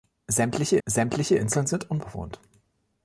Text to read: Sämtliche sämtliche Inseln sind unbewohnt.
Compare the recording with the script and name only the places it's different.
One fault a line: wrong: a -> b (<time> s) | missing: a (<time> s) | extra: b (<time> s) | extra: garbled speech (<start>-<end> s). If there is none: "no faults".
no faults